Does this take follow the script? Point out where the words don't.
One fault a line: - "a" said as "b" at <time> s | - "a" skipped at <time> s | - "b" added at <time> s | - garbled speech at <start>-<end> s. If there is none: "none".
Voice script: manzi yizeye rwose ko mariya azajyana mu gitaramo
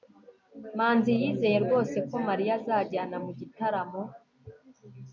none